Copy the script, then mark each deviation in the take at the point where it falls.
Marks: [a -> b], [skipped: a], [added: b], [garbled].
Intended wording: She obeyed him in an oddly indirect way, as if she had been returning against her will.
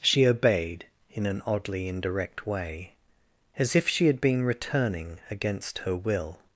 She obeyed [skipped: him] in an oddly indirect way, as if she had been returning against her will.